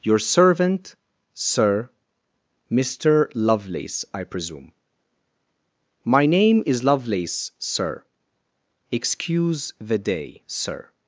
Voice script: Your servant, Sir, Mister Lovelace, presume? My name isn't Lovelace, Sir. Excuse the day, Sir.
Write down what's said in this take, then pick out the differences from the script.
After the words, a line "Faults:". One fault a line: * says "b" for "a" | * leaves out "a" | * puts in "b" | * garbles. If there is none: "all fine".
Your servant, Sir, Mister Lovelace, I presume? My name is Lovelace, Sir. Excuse the day, Sir.
Faults:
* puts in "I"
* says "is" for "isn't"